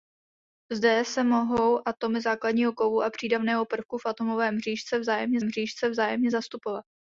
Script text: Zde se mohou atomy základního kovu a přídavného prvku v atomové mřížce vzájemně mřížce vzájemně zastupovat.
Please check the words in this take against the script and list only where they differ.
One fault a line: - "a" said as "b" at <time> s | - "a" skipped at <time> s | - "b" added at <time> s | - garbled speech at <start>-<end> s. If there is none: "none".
none